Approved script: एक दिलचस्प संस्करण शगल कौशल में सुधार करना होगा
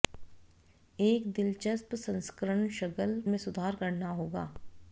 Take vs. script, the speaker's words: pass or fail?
fail